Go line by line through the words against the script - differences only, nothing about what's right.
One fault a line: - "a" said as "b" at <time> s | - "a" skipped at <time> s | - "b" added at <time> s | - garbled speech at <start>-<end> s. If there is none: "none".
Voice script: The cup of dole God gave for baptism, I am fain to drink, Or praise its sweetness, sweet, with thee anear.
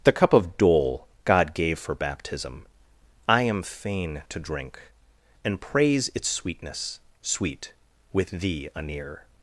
- "Or" said as "And" at 5.5 s